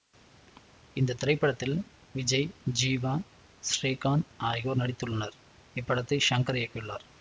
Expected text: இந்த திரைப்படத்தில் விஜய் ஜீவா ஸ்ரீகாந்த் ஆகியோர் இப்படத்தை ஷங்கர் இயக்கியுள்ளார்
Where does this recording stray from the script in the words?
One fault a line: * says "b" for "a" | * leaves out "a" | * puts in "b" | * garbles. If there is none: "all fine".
* puts in "நடித்துள்ளனர்"